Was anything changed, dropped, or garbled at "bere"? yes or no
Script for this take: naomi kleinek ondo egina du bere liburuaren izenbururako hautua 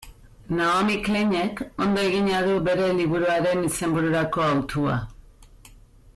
no